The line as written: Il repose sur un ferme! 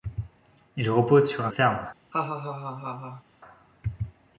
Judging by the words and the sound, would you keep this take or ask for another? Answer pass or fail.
fail